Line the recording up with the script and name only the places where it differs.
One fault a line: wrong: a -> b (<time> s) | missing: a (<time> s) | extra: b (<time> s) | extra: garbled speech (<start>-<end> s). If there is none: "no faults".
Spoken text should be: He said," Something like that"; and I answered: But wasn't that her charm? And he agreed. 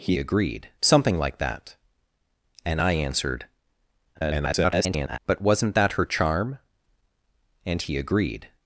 wrong: said -> agreed (0.2 s)
extra: garbled speech (4.1-5.2 s)